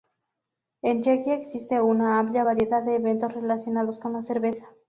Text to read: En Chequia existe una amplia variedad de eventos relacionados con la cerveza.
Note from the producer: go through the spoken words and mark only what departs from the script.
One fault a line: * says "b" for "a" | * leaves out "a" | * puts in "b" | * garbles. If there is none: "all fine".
all fine